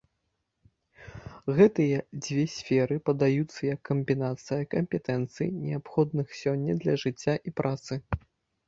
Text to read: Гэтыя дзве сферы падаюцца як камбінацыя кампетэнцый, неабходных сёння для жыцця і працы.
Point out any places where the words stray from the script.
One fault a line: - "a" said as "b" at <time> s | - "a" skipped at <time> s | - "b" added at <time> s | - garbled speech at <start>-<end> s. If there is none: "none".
none